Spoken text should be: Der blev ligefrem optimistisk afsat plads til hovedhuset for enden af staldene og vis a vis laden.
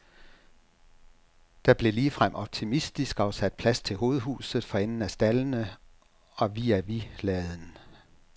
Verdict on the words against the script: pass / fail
pass